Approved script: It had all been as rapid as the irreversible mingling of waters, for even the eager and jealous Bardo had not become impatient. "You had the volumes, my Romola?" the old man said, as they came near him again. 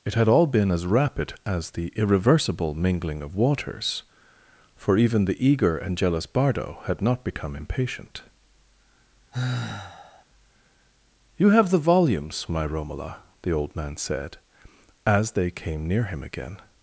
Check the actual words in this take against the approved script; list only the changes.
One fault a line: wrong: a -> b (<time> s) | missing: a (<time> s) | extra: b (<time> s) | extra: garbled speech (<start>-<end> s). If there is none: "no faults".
wrong: had -> have (11.5 s)